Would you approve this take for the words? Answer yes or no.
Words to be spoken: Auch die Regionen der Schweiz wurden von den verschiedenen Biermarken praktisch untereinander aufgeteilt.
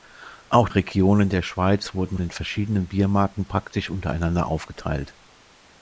no